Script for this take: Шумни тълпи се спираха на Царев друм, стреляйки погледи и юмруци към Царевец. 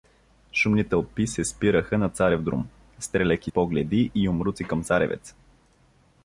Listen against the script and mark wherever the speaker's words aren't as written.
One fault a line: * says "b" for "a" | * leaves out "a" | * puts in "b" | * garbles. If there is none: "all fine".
all fine